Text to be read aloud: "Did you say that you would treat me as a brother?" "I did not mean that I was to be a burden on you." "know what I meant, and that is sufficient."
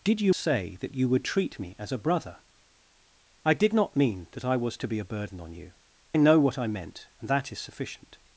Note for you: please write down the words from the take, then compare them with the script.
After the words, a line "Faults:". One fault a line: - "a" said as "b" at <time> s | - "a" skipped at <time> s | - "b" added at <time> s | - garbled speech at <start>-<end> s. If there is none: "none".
"Did you say that you would treat me as a brother?" "I did not mean that I was to be a burden on you." "know what I meant, and that is sufficient."
Faults:
none